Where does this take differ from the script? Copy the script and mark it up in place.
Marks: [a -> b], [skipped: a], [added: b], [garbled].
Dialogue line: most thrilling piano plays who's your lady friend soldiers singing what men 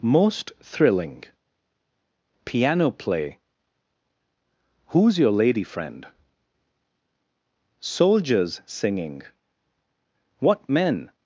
most thrilling piano [plays -> play] who's your lady friend soldiers singing what men